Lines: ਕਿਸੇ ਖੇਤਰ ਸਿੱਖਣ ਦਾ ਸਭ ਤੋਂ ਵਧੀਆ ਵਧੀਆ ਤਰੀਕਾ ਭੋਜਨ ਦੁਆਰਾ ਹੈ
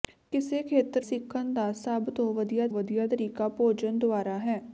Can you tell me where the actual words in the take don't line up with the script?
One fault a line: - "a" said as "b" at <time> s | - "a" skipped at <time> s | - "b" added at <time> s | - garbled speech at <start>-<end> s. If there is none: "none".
none